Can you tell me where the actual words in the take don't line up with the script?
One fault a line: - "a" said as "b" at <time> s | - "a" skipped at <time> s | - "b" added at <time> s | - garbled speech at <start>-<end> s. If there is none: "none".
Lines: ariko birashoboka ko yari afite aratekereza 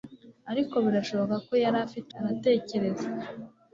none